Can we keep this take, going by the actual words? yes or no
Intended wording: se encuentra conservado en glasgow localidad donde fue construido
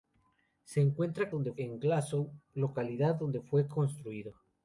no